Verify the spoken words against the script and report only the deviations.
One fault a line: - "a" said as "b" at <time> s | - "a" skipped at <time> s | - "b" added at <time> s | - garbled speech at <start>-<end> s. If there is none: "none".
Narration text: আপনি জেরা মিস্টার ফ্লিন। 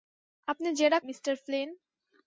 none